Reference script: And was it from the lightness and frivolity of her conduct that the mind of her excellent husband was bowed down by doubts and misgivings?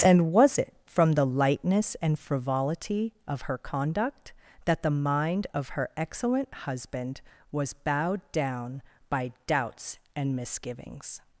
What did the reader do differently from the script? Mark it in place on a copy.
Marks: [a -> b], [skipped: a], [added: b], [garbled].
And was it from the lightness and frivolity of her conduct that the mind of her excellent husband was bowed down by doubts and misgivings?